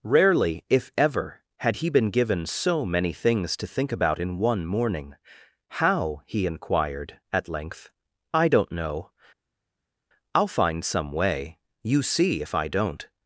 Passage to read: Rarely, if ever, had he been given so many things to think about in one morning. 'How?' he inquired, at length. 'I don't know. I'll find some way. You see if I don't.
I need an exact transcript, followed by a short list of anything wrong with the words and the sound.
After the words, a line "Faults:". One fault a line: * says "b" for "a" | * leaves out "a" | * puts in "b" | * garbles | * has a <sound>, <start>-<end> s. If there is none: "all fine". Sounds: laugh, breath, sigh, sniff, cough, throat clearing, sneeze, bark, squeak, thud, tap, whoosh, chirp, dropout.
Rarely, if ever, had he been given so many things to think about in one morning. 'How?' he inquired, at length. 'I don't know. I'll find some way. You see if I don't.
Faults:
all fine